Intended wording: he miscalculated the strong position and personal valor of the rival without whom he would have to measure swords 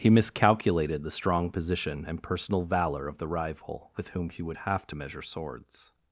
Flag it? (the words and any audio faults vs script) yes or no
yes